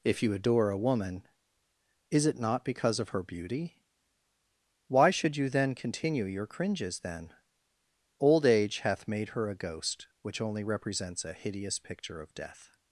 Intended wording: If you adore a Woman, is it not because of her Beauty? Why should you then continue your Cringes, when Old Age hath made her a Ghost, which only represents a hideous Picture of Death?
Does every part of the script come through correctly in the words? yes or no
no